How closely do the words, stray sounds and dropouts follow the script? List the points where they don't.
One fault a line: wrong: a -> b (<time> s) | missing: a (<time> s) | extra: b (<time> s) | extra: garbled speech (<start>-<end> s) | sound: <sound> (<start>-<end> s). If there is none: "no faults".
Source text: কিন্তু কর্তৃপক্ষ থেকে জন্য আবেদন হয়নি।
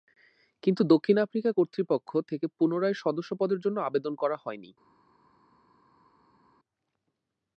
extra: দক্ষিণ আফ্রিকা (0.8 s)
extra: পুনরায় সদস্যপদের (2.6 s)
extra: করা (4.1 s)